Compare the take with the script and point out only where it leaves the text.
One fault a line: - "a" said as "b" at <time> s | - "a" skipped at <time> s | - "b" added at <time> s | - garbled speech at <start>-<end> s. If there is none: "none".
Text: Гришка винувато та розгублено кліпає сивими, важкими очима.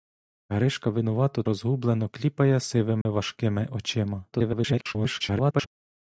- "та" skipped at 1.4 s
- garbled speech at 4.3-5.7 s